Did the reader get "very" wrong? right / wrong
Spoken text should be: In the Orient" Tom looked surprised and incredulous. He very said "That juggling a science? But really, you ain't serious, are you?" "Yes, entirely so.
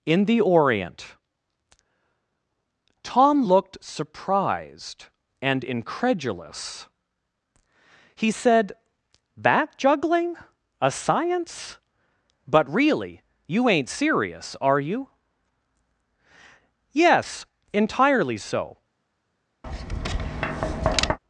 wrong